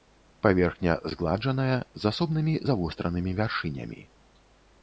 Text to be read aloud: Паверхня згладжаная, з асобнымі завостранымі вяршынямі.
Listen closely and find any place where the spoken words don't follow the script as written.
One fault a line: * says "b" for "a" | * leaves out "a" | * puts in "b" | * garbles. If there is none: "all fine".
all fine